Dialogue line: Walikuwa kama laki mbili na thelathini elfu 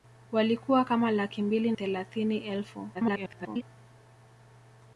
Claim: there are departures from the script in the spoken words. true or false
true